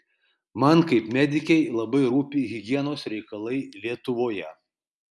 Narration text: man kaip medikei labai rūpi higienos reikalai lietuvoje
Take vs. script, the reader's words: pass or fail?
pass